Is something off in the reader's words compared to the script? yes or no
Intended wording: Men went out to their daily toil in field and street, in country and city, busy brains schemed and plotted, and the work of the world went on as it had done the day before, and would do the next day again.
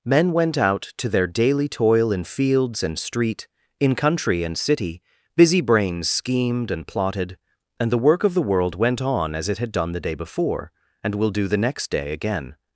yes